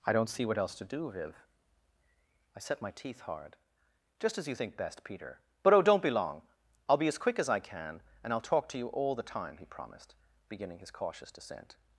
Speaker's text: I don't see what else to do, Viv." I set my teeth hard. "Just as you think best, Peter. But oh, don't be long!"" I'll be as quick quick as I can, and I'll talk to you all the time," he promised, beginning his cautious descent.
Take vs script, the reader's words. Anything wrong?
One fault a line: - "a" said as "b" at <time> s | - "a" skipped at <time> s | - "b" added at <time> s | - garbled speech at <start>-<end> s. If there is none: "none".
- "quick" skipped at 7.4 s